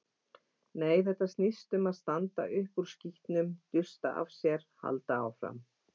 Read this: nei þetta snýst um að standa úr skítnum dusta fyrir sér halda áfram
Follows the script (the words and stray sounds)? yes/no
no